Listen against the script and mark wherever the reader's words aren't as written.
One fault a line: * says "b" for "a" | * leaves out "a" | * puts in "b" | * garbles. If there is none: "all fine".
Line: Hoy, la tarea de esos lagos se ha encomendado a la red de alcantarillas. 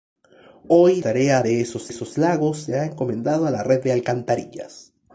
* leaves out "la"
* puts in "esos"